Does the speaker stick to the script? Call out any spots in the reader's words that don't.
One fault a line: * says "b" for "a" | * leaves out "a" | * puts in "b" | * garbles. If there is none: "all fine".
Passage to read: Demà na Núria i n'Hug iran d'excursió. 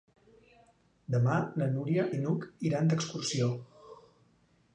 all fine